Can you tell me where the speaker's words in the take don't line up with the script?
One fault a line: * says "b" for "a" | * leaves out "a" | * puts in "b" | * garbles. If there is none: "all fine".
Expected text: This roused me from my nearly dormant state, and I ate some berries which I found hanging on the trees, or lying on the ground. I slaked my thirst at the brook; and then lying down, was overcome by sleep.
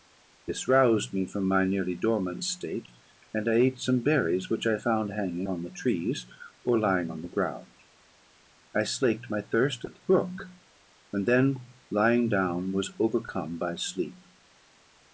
all fine